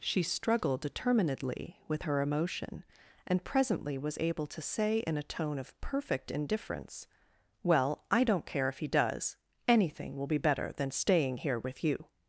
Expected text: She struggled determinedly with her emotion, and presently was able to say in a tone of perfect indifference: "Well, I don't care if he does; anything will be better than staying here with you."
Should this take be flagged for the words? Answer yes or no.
no